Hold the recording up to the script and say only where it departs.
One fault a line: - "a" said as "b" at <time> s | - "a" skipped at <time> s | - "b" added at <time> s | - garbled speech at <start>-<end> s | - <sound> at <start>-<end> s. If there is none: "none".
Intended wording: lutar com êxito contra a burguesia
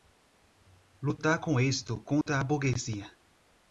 - dropout at 2.2-2.3 s